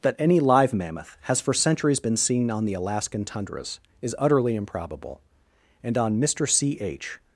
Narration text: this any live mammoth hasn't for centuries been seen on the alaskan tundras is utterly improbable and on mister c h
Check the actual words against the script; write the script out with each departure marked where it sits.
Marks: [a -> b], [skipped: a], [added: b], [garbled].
[this -> that] any live mammoth [hasn't -> has] for centuries been seen on the alaskan tundras is utterly improbable and on mister c h